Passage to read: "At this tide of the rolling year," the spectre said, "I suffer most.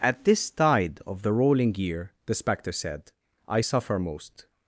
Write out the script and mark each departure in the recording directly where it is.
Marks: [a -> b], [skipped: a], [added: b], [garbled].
"At this tide of the rolling year," the spectre said, "I suffer most.